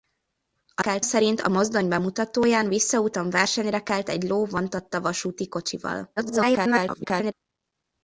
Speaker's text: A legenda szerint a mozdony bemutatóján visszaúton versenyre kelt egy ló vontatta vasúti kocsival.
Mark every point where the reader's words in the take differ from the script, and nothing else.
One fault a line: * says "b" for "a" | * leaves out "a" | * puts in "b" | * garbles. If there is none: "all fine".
* says "kelt" for "legenda"
* garbles